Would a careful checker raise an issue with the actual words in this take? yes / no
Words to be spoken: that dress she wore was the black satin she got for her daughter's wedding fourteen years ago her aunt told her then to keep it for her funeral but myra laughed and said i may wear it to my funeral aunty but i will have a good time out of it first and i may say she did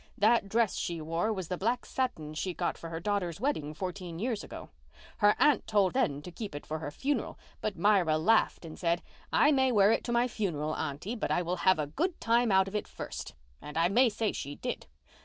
yes